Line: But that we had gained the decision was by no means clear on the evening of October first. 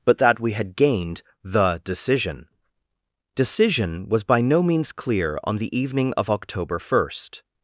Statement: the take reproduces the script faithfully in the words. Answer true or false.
false